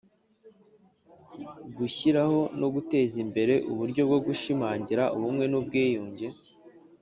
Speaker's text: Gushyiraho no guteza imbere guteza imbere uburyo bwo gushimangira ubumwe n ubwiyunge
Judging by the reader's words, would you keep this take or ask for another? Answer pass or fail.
fail